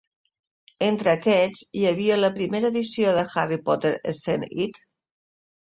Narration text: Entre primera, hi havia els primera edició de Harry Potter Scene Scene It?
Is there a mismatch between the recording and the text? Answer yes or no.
yes